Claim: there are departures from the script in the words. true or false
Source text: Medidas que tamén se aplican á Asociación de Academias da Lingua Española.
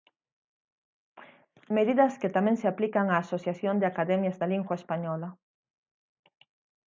false